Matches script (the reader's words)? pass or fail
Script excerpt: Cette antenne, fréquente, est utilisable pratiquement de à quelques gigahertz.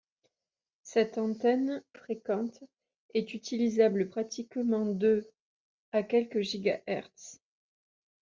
pass